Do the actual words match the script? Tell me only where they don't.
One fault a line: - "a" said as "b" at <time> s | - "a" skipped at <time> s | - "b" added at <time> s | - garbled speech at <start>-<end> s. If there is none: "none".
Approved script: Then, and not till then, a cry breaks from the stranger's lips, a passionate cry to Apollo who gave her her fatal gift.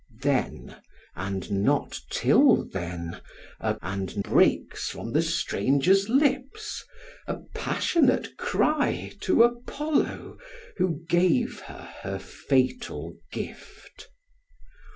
- "cry" said as "and" at 3.8 s